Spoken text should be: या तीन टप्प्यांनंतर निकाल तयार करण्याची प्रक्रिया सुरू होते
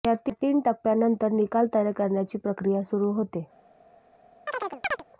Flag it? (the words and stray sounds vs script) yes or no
yes